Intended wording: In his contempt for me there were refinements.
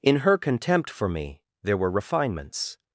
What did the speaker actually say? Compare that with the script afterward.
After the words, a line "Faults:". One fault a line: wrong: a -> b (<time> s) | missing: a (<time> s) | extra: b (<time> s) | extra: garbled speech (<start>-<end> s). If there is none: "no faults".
In her contempt for me there were refinements.
Faults:
wrong: his -> her (0.2 s)